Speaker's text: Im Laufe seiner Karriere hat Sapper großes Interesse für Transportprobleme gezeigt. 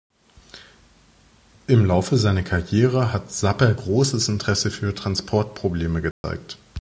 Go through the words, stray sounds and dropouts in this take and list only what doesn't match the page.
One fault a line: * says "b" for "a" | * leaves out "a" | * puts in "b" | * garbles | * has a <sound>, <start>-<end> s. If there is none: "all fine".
* has a dropout, 6.1-6.2 s